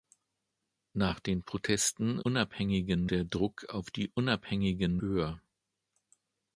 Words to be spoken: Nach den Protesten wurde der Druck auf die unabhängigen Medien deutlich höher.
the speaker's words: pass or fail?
fail